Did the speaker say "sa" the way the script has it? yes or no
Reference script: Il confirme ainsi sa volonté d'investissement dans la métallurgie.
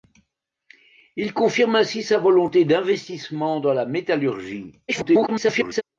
yes